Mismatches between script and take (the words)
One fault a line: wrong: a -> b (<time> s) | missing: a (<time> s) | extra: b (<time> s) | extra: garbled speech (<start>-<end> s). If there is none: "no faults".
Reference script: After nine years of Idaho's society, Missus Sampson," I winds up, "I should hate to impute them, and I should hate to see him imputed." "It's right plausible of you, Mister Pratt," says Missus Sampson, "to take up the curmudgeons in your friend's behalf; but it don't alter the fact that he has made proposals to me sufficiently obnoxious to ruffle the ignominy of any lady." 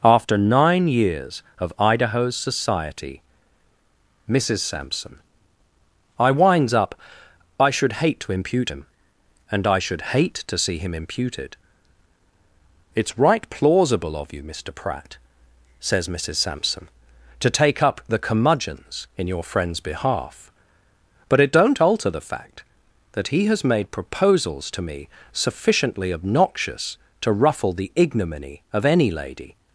wrong: them -> him (8.7 s)